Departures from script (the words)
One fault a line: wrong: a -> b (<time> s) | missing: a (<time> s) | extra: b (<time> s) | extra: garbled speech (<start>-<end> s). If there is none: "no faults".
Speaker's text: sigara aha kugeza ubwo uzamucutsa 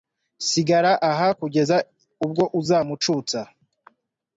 no faults